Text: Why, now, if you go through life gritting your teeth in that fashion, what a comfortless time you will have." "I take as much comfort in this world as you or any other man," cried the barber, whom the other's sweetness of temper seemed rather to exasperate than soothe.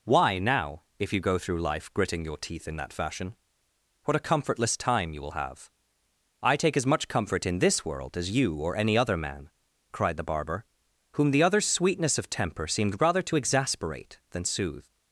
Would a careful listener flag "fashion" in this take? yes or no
no